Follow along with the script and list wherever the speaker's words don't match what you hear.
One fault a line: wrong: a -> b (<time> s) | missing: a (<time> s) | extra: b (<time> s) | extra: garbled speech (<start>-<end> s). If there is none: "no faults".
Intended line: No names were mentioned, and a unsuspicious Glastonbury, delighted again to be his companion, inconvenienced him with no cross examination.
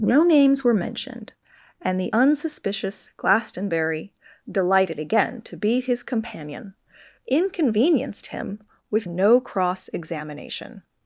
wrong: a -> the (2.0 s)